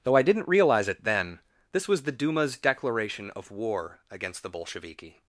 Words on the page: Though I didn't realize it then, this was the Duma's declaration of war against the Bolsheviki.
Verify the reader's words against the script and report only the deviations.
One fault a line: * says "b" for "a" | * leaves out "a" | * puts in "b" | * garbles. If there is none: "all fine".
all fine